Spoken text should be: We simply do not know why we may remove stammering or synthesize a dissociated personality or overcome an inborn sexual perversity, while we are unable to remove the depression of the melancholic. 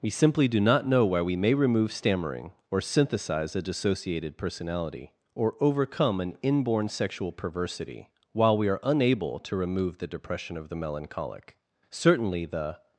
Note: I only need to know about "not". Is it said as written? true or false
true